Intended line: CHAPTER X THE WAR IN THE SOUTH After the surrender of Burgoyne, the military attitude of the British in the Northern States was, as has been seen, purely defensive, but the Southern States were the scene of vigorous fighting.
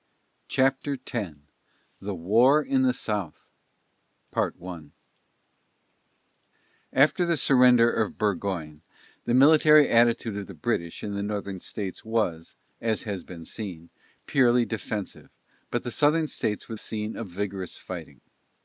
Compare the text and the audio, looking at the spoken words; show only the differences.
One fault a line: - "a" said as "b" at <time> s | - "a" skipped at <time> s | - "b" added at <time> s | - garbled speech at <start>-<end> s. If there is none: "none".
- "the" skipped at 16.8 s